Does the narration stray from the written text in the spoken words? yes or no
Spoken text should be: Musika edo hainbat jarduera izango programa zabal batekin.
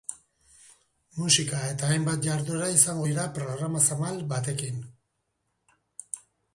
yes